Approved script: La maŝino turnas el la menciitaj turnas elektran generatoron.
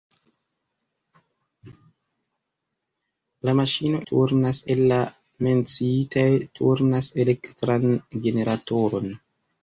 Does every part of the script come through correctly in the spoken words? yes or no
yes